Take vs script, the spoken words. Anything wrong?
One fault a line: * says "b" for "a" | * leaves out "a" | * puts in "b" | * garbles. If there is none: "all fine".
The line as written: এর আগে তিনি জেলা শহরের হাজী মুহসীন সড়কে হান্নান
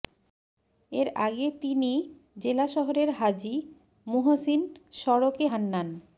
all fine